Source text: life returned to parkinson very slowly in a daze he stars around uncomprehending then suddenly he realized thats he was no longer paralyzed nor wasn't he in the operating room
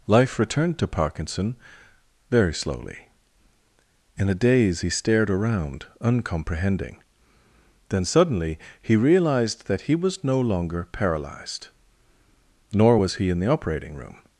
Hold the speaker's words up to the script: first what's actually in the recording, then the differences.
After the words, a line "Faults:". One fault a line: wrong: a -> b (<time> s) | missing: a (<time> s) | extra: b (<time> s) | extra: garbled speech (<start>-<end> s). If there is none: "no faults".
life returned to parkinson very slowly in a daze he stared around uncomprehending then suddenly he realized that he was no longer paralyzed nor was he in the operating room
Faults:
wrong: stars -> stared (4.9 s)
wrong: thats -> that (9.7 s)
wrong: wasn't -> was (12.9 s)